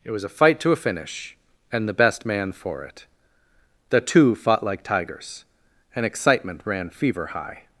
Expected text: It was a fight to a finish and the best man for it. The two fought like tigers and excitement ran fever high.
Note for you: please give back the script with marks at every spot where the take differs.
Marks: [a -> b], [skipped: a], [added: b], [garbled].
It was a fight to a finish and the best man for it. The two fought like tigers and excitement ran fever high.